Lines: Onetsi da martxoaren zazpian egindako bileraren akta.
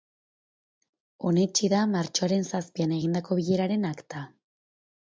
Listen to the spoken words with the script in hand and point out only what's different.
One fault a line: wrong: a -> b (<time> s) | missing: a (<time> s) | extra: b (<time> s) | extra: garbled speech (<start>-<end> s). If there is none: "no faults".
no faults